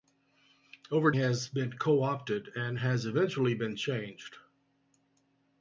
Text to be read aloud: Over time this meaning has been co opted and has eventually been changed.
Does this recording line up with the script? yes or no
no